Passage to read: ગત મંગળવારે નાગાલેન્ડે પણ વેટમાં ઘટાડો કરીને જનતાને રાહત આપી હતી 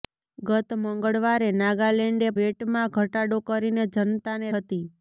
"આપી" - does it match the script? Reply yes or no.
no